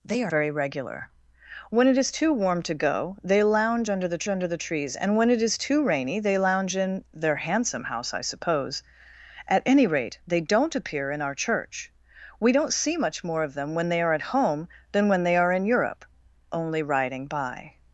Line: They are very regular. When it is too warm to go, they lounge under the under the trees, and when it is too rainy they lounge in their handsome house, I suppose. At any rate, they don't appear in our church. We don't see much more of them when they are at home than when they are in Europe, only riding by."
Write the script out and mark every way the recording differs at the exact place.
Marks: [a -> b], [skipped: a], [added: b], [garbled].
They are very regular. When it is too warm to go, they lounge under the under the trees, and when it is too rainy they lounge in their handsome house, I suppose. At any rate, they don't appear in our church. We don't see much more of them when they are at home than when they are in Europe, only riding by."